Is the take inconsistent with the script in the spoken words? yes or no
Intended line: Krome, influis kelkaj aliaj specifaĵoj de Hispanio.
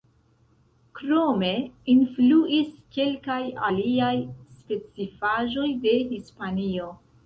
no